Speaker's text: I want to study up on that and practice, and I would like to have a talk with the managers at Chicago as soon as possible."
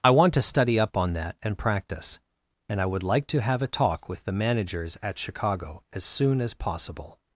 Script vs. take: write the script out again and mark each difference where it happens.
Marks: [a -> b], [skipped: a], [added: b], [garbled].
I want to study up on that and practice, and I would like to have a talk with the managers at Chicago as soon as possible."